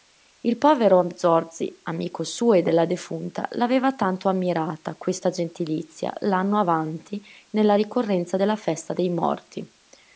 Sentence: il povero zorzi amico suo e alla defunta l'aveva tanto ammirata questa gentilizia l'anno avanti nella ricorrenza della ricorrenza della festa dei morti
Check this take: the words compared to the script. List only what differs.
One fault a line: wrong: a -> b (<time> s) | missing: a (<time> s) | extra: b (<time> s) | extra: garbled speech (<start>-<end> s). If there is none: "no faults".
wrong: alla -> della (2.6 s)
missing: ricorrenza della (8.6 s)